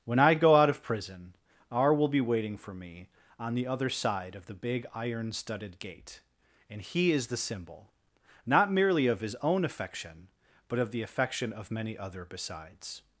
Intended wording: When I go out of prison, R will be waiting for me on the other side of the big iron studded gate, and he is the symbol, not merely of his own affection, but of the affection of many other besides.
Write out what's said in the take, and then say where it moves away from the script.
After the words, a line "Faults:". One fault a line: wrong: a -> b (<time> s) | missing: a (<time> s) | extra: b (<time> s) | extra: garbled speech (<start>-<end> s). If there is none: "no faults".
When I go out of prison, R will be waiting for me on the other side of the big iron studded gate, and he is the symbol, not merely of his own affection, but of the affection of many other besides.
Faults:
no faults